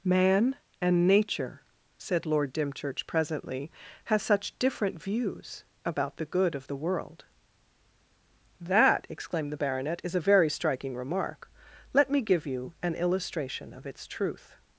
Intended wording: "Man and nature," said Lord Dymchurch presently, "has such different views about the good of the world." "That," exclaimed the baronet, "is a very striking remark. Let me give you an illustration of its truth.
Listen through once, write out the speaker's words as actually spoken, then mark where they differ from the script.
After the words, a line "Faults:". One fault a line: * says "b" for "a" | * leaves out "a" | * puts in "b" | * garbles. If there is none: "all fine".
"Man and nature," said Lord Dymchurch presently, "has such different views about the good of the world." "That," exclaimed the baronet, "is a very striking remark. Let me give you an illustration of its truth.
Faults:
all fine